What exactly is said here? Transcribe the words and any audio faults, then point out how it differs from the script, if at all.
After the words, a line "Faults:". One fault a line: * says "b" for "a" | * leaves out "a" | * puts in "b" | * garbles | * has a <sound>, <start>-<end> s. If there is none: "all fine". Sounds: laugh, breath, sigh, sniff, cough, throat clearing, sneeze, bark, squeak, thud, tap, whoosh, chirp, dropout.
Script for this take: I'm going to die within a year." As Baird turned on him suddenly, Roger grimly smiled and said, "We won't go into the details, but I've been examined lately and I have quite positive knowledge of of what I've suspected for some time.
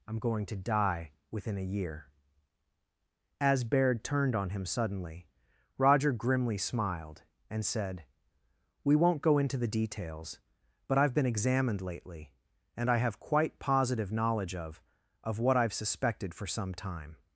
I'm going to die within a year." As Baird turned on him suddenly, Roger grimly smiled and said, "We won't go into the details, but I've been examined lately and I have quite positive knowledge of of what I've suspected for some time.
Faults:
all fine